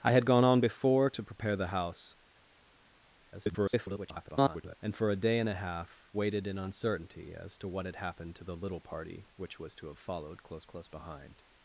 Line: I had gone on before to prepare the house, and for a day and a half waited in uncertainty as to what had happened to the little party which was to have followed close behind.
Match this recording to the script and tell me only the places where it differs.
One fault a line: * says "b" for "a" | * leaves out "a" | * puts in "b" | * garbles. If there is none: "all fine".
* garbles
* puts in "close"